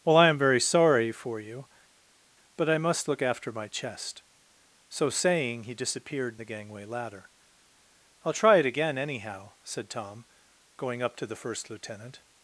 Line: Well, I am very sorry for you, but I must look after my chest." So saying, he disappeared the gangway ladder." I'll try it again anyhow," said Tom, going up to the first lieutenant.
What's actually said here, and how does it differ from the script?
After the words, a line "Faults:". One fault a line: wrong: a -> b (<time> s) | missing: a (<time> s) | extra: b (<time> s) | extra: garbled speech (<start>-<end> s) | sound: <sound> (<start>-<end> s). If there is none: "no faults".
Well, I am very sorry for you, but I must look after my chest." So saying, he disappeared the gangway ladder." I'll try it again anyhow," said Tom, going up to the first lieutenant.
Faults:
no faults